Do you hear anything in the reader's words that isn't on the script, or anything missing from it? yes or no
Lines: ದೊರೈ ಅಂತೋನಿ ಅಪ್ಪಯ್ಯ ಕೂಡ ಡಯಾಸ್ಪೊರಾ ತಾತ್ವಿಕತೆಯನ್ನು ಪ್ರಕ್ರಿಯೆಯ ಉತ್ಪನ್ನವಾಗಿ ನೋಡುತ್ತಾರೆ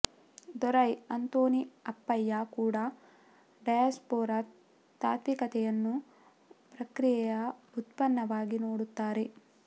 no